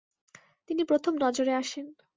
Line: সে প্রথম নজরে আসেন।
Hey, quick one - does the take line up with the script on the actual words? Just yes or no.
no